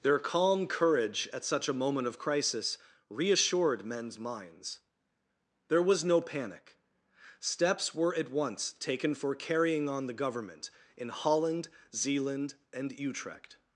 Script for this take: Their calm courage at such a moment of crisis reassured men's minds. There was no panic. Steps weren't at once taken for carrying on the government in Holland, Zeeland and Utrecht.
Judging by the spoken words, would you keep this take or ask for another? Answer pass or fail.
fail